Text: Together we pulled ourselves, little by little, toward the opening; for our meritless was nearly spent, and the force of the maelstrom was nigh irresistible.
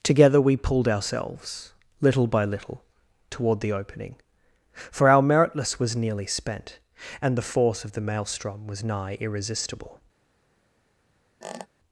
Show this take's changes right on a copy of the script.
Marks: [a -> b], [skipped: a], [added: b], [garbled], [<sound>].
Together we pulled ourselves, little by little, toward the opening; for our meritless was nearly spent, and the force of the maelstrom was nigh irresistible. [squeak]